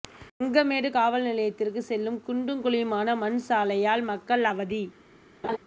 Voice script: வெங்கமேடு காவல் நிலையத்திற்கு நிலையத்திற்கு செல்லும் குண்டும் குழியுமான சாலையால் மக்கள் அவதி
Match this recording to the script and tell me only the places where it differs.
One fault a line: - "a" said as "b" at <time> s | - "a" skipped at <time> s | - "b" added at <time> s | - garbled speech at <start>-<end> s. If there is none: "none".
- "நிலையத்திற்கு" skipped at 1.8 s
- "மண்" added at 3.2 s